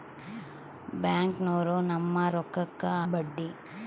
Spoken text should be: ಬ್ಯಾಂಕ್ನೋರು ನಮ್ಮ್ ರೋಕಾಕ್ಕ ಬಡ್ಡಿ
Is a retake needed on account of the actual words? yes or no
no